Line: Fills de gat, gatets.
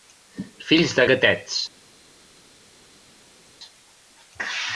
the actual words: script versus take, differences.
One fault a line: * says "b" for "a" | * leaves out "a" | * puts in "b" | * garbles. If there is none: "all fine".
* leaves out "gat"